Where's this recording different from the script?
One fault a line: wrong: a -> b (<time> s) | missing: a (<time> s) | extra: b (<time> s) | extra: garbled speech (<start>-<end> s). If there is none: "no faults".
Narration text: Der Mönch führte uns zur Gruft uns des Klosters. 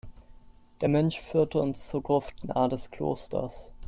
wrong: uns -> nahe (2.4 s)